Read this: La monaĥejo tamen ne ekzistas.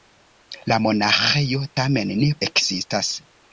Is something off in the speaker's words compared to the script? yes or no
no